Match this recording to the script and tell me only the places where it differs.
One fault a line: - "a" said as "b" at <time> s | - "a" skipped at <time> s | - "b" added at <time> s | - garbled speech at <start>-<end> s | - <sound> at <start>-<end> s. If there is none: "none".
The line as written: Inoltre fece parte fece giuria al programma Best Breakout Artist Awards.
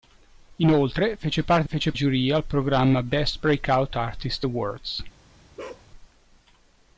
- bark at 5.6-5.9 s